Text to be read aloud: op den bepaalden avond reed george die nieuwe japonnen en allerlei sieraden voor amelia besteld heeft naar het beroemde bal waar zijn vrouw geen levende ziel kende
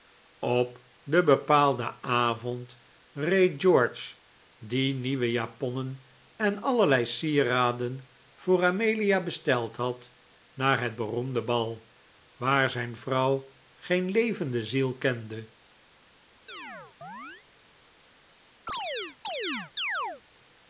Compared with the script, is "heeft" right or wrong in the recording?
wrong